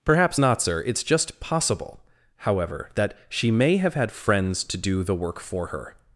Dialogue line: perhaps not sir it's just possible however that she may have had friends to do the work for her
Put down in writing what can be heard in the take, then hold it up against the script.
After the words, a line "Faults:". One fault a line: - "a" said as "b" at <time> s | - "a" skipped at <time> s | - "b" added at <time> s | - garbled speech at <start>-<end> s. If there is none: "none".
perhaps not sir it's just possible however that she may have had friends to do the work for her
Faults:
none